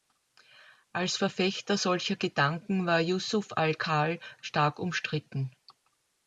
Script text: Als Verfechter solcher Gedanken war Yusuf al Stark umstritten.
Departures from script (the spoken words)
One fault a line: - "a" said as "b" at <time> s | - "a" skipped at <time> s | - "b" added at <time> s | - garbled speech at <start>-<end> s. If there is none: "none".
- "Khal" added at 3.7 s